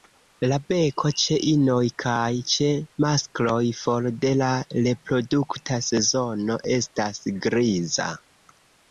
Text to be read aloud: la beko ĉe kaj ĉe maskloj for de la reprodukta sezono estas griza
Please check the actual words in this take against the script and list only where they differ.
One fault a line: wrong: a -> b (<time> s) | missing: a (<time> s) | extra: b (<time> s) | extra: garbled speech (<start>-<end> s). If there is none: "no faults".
extra: inoj (1.5 s)